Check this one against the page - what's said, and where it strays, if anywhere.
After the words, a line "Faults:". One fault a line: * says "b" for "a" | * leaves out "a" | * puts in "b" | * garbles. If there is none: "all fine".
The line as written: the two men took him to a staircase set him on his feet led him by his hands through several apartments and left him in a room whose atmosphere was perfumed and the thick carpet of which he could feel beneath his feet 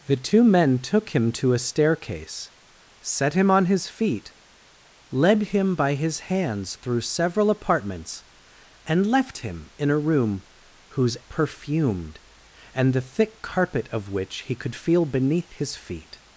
the two men took him to a staircase set him on his feet led him by his hands through several apartments and left him in a room whose perfumed and the thick carpet of which he could feel beneath his feet
Faults:
* leaves out "atmosphere was"